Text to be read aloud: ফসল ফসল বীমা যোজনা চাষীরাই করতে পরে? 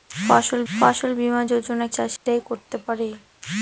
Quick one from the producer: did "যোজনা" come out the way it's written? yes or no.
yes